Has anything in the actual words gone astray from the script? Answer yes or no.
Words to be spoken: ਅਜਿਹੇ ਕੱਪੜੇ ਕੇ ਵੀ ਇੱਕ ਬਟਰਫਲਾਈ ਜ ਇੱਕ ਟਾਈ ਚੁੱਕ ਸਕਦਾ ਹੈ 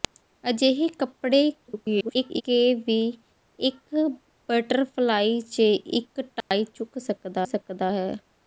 yes